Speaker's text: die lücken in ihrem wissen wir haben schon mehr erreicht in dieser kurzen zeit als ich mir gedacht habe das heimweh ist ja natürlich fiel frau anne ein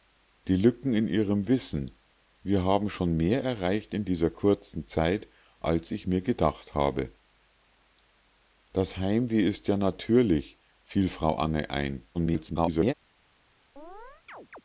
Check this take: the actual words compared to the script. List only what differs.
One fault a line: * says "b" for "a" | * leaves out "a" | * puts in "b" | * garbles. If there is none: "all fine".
* garbles